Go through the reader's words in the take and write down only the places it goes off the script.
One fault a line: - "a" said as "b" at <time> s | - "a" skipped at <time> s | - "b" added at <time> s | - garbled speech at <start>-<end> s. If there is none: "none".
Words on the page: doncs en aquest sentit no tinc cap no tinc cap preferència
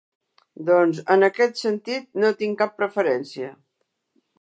- "no tinc cap" skipped at 2.8 s